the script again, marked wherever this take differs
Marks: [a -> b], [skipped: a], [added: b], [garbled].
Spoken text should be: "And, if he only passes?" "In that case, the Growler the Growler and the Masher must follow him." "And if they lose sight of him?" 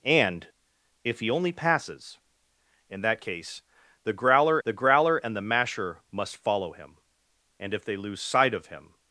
"And, if he only passes?" "In that case, the Growler the Growler and the Masher must follow him." "And if they lose sight of him?"